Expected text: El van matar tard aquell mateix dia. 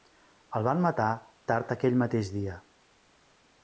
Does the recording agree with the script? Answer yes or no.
yes